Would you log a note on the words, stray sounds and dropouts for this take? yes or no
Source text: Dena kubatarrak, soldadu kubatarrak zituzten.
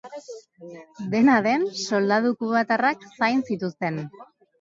yes